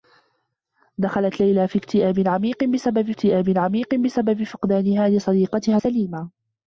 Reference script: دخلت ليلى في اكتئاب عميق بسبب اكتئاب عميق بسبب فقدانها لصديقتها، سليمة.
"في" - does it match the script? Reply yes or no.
yes